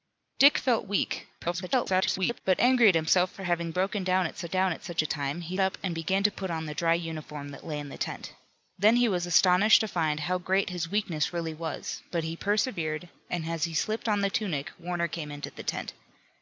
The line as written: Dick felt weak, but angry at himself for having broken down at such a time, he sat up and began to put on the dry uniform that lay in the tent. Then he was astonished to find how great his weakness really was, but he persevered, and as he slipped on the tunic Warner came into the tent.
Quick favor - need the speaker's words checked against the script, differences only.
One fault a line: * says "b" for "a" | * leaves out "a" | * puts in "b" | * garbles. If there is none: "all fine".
* garbles
* puts in "down at such"
* leaves out "sat"